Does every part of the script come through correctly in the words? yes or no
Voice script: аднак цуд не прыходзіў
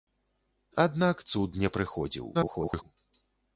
no